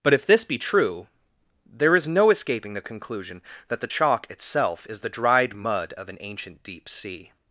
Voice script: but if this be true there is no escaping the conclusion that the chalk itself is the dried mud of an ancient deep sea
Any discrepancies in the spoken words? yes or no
no